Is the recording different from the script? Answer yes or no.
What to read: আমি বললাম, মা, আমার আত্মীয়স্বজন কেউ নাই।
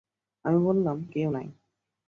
yes